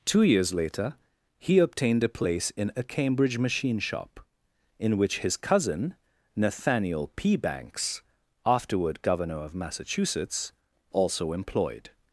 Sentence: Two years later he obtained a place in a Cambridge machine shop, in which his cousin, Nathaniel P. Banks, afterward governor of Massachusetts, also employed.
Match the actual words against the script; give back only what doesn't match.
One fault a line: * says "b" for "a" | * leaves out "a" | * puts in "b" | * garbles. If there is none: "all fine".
all fine